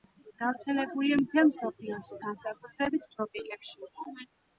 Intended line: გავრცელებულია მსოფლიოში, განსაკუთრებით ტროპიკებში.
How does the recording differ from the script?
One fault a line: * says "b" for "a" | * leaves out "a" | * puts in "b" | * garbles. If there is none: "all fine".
* puts in "მთელ"